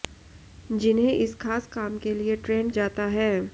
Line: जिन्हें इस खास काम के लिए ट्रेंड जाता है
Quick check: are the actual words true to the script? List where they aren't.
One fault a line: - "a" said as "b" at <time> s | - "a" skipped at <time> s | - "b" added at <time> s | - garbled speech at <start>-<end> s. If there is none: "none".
none